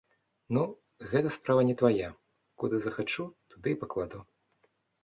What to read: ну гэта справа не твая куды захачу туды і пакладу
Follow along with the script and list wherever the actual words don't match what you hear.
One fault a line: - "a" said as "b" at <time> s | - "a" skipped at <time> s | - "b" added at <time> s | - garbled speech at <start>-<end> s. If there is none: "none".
none